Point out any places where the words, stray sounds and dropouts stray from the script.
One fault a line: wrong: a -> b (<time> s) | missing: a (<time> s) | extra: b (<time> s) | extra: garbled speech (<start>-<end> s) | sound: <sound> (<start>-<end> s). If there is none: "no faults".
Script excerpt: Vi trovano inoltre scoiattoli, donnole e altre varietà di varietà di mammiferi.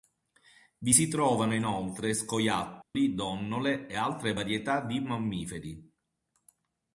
extra: si (0.9 s)
sound: dropout (2.8-3.0 s)
missing: varietà di (5.0 s)